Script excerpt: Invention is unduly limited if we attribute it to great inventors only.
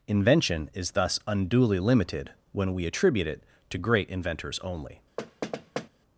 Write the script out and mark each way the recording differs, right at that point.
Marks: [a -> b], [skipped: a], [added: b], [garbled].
Invention is [added: thus] unduly limited [if -> when] we attribute it to great inventors only.